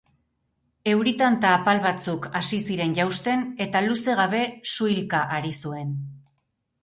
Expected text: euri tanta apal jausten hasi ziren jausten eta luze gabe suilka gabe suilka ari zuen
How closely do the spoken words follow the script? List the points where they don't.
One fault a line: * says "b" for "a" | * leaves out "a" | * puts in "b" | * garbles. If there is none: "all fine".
* says "batzuk" for "jausten"
* leaves out "gabe suilka"